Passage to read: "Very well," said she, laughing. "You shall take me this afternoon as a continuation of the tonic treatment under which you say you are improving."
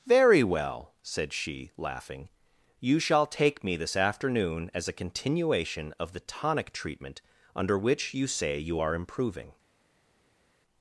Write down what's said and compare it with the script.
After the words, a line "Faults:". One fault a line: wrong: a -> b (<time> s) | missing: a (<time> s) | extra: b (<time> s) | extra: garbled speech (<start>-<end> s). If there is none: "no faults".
"Very well," said she, laughing. "You shall take me this afternoon as a continuation of the tonic treatment under which you say you are improving."
Faults:
no faults